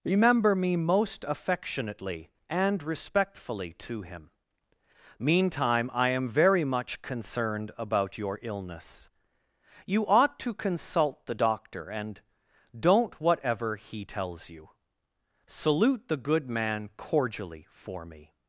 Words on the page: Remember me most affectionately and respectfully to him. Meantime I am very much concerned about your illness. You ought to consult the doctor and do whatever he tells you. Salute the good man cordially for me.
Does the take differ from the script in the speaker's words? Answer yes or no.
yes